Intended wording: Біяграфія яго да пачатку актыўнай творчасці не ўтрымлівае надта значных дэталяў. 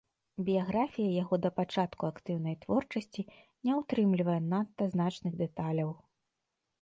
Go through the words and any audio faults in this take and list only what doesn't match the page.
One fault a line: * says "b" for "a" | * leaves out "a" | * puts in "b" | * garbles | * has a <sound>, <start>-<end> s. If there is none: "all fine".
all fine